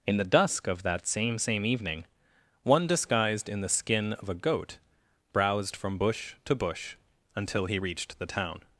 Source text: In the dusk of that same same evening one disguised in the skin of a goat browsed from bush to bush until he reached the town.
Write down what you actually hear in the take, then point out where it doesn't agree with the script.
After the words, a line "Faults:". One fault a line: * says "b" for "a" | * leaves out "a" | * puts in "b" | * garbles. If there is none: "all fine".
In the dusk of that same same evening one disguised in the skin of a goat browsed from bush to bush until he reached the town.
Faults:
all fine